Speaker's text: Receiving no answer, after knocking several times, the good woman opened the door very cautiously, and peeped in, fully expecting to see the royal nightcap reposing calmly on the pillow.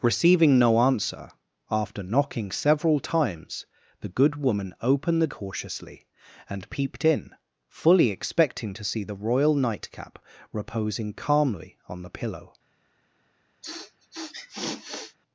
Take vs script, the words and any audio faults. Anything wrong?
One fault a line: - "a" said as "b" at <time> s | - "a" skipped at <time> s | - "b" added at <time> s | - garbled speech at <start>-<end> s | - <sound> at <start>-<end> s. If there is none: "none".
- "door very" skipped at 5.3 s
- sniff at 13.6-15.2 s